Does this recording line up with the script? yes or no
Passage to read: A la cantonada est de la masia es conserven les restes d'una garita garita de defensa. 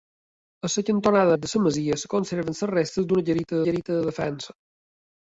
yes